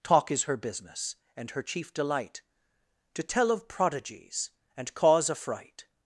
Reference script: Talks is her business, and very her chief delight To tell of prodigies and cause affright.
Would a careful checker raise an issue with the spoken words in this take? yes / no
yes